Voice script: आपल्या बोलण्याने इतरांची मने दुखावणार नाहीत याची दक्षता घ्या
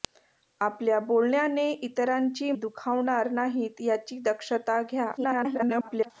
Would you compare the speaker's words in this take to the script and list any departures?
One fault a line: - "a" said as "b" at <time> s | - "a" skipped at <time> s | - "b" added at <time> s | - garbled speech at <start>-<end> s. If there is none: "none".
- "मने" skipped at 2.5 s
- garbled speech at 5.2-6.1 s